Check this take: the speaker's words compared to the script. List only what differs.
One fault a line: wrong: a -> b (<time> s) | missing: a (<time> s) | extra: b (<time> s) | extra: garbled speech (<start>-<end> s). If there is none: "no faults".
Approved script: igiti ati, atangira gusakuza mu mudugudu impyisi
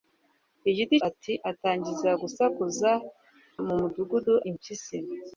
no faults